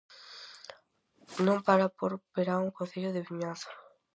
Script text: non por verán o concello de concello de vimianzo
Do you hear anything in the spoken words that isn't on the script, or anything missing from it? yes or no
yes